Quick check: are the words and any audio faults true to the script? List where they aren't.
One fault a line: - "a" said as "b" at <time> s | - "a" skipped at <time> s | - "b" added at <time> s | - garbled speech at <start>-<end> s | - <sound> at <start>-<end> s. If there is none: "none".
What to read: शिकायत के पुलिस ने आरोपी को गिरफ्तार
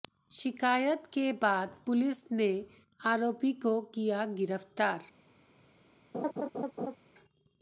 - "बाद" added at 1.3 s
- "किया" added at 3.9 s
- laugh at 6.1-7.0 s